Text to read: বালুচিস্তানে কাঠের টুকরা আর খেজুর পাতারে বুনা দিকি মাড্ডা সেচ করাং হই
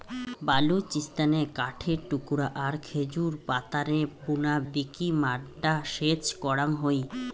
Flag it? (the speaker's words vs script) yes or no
no